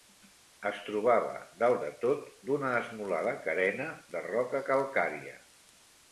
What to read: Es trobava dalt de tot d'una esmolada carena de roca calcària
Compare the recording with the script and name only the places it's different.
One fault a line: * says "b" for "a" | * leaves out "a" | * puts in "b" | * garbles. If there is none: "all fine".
all fine